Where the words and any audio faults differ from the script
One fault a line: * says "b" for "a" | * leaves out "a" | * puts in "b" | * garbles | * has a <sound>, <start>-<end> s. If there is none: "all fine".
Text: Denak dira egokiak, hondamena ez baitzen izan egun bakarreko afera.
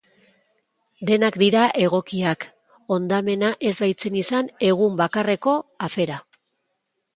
all fine